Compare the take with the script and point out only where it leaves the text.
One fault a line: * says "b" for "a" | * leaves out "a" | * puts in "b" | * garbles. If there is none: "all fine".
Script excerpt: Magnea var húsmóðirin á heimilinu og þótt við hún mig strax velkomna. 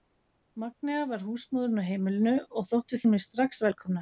all fine